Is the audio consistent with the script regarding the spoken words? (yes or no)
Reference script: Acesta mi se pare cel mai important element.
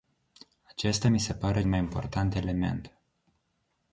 no